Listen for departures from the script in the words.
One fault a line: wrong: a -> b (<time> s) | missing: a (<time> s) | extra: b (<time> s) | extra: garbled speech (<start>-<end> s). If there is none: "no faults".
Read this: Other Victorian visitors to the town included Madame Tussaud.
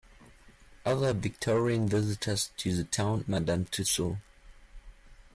missing: included (3.2 s)